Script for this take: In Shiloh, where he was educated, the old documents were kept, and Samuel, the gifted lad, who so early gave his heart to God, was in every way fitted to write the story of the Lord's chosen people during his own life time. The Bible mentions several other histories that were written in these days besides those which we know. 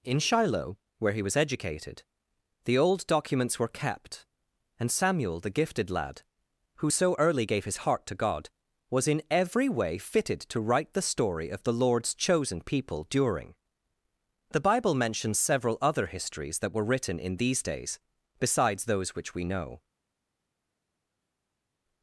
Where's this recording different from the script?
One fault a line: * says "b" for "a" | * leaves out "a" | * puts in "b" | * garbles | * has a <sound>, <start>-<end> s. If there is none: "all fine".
* leaves out "his own life time"